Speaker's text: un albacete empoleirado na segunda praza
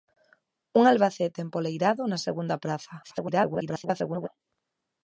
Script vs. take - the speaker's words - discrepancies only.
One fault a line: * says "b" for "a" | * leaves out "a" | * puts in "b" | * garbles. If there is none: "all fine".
* garbles